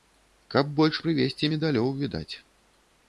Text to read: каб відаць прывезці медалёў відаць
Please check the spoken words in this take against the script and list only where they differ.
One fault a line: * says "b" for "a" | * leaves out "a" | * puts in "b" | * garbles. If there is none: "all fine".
* says "больш" for "відаць"